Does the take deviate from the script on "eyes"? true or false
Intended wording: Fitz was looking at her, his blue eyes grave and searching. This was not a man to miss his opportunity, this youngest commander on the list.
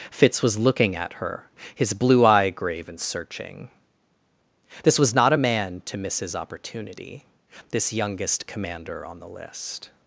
true